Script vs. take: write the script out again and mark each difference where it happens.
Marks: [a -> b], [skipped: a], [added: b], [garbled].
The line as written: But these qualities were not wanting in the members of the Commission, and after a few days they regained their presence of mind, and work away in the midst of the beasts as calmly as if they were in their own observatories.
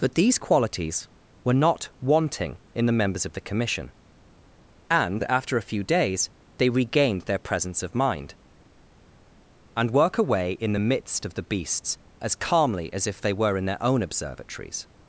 But these qualities were not wanting in the members of the Commission, and after a few days they regained their presence of mind, and work away in the midst of the beasts as calmly as if they were in their own observatories.